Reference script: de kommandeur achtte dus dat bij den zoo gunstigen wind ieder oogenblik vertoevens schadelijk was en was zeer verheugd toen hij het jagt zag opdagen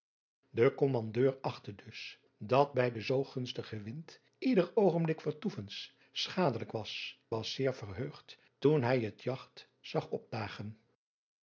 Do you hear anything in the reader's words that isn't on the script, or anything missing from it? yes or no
yes